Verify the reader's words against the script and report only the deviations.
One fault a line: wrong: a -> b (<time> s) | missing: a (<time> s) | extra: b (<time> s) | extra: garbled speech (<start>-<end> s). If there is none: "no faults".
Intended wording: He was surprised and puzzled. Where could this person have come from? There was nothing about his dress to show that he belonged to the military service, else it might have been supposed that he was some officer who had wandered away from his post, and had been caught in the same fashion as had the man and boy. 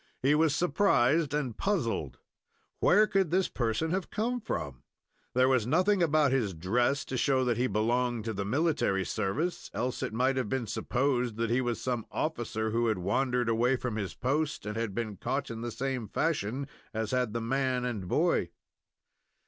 no faults